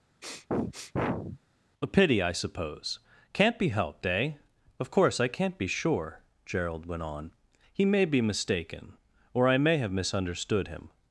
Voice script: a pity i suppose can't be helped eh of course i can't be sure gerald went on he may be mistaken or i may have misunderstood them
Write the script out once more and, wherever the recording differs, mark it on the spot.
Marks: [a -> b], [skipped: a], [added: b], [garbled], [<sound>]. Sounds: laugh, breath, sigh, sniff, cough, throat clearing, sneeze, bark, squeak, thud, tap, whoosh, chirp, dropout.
[sniff] a pity i suppose can't be helped eh of course i can't be sure gerald went on he may be mistaken or i may have misunderstood [them -> him]